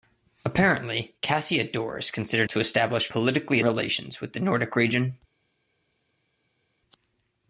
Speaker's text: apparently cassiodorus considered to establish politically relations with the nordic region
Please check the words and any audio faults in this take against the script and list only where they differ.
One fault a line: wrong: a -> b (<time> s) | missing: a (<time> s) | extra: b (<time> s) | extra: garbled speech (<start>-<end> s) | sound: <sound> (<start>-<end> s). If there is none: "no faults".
no faults